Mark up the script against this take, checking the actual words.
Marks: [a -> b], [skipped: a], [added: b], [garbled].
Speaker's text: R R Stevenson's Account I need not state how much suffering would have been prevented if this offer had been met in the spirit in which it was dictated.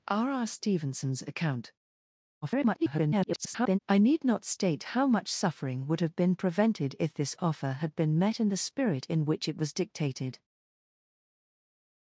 R R Stevenson's Account [garbled] I need not state how much suffering would have been prevented if this offer had been met in the spirit in which it was dictated.